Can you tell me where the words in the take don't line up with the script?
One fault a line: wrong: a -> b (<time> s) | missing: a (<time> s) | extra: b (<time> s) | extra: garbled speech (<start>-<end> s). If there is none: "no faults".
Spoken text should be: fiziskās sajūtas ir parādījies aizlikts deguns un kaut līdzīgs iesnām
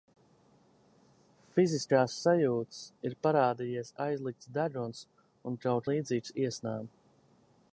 no faults